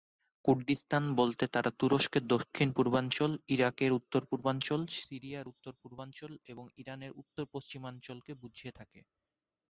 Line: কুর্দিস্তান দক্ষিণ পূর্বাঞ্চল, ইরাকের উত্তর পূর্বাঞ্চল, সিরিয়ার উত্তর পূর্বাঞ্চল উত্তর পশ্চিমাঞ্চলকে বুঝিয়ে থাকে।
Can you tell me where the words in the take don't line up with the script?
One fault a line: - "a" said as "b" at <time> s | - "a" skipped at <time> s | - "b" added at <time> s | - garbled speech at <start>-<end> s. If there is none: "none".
- "বলতে তারা তুরস্কের" added at 1.1 s
- "এবং ইরানের" added at 6.5 s